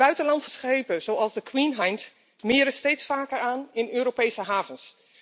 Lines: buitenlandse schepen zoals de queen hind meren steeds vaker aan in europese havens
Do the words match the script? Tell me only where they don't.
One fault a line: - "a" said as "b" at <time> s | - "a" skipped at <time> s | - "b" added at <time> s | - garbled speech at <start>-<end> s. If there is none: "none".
none